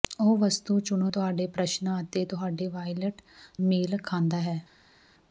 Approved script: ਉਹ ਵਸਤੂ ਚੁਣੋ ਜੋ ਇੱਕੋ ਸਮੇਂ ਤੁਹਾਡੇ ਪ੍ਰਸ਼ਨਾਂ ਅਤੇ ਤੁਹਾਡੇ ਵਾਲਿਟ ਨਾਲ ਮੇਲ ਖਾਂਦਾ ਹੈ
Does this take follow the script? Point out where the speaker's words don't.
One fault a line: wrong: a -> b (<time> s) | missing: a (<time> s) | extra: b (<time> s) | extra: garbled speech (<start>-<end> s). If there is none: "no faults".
missing: ਜੋ ਇੱਕੋ ਸਮੇਂ (1.1 s)
missing: ਨਾਲ (3.2 s)